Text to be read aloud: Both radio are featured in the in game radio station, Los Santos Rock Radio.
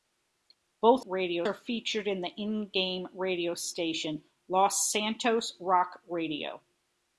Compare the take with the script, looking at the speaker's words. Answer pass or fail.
pass